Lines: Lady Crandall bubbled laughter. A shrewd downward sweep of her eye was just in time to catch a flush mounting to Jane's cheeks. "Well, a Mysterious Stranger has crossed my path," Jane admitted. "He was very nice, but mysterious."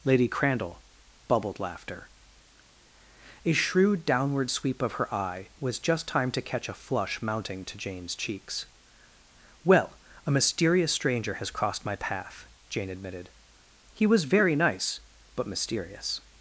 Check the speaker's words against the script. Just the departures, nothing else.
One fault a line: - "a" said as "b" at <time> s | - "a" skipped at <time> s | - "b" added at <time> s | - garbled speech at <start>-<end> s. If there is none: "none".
- "in" skipped at 6.1 s